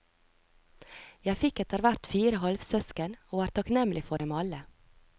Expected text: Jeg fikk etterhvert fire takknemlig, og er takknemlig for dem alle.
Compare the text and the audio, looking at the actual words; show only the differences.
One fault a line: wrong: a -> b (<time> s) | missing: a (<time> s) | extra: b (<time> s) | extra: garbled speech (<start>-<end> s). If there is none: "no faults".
wrong: takknemlig -> halvsøsken (2.4 s)